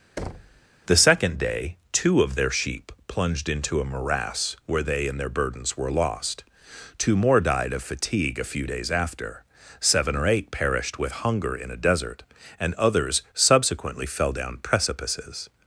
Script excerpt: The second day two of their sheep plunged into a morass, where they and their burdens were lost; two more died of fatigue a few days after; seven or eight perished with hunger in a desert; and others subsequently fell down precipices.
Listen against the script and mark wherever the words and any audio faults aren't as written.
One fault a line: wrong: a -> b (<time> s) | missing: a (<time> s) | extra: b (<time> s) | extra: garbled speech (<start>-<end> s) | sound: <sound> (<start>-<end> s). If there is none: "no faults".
sound: thud (0.2-0.6 s)